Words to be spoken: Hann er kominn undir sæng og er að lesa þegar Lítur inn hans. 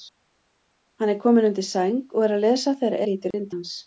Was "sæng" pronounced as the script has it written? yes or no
yes